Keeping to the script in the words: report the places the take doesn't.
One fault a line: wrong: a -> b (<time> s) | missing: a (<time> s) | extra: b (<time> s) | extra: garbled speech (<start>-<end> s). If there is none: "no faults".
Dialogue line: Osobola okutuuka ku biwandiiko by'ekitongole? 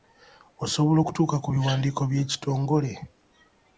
no faults